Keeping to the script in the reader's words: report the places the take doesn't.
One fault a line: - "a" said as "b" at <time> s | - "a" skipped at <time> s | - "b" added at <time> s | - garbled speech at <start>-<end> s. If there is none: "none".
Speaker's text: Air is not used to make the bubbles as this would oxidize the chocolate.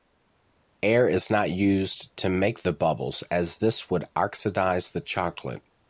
none